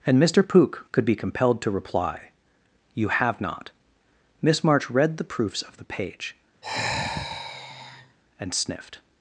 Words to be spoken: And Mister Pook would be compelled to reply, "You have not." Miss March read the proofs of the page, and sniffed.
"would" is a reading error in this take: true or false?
true